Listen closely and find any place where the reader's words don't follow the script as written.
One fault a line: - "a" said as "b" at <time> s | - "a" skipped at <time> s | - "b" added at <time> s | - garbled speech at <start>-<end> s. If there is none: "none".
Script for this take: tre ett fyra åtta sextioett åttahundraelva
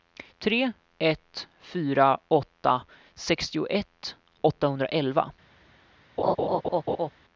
none